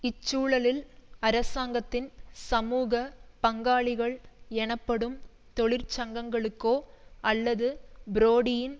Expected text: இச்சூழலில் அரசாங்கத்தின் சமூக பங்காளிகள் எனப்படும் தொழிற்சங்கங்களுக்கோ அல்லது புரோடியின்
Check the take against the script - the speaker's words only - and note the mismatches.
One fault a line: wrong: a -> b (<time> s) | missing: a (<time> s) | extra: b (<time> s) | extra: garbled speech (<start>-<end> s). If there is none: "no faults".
no faults